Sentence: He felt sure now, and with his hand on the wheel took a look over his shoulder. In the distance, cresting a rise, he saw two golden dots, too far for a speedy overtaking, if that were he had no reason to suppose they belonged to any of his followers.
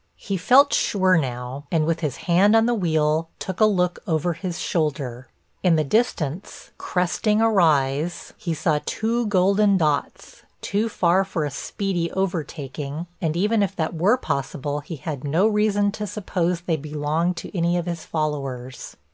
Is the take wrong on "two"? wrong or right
right